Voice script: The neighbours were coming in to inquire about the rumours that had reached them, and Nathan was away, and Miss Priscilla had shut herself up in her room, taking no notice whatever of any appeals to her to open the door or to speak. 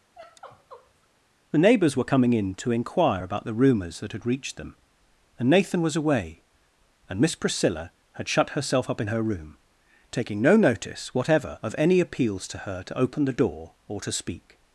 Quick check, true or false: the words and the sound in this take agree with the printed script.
false